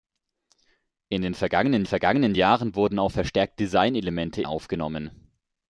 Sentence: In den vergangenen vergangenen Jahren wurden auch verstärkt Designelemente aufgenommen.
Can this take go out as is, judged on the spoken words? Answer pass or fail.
pass